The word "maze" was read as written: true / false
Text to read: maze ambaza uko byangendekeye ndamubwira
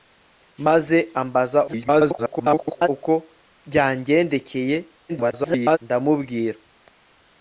true